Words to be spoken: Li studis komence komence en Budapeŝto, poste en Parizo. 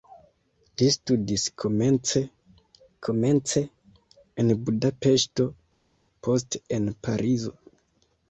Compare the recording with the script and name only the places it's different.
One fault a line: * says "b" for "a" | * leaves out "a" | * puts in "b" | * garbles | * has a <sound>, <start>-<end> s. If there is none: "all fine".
all fine